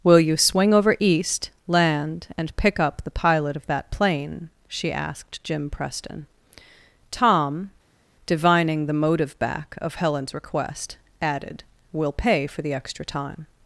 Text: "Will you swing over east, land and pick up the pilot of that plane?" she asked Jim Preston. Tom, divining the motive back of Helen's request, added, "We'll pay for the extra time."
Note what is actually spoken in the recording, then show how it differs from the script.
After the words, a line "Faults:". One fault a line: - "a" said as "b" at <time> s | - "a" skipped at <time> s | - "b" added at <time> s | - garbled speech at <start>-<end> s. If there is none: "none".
"Will you swing over east, land and pick up the pilot of that plane?" she asked Jim Preston. Tom, divining the motive back of Helen's request, added, "We'll pay for the extra time."
Faults:
none